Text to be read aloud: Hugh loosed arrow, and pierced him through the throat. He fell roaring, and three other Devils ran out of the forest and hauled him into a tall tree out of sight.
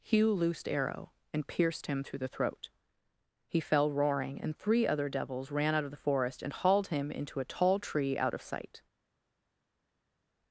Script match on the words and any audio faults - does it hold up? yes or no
yes